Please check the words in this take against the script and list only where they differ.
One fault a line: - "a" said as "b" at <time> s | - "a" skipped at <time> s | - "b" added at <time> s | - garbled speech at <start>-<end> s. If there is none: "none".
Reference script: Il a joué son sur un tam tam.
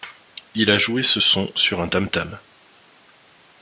- "ce" added at 1.0 s